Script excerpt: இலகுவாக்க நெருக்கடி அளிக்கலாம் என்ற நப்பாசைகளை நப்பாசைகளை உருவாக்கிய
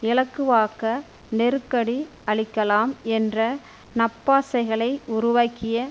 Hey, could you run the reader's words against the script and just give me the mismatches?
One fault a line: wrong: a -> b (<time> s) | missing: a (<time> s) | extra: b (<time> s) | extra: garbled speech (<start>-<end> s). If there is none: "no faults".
missing: நப்பாசைகளை (4.9 s)